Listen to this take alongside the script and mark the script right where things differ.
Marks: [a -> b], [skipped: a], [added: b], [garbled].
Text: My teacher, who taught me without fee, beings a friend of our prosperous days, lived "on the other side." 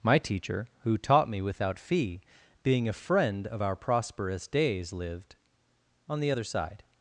My teacher, who taught me without fee, [beings -> being] a friend of our prosperous days, lived "on the other side."